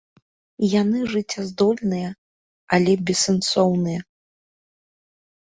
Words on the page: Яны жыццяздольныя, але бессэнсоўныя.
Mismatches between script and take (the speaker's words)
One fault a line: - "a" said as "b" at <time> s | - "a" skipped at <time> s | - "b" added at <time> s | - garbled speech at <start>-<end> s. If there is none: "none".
none